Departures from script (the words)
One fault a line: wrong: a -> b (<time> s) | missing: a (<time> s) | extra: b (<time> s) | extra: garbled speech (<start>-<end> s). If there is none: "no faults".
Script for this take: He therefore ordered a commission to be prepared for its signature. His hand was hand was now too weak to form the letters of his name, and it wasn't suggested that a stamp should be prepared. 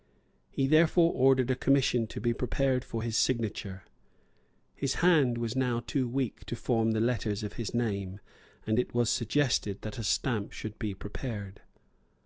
wrong: its -> his (3.0 s)
missing: hand was (5.6 s)
wrong: wasn't -> was (8.9 s)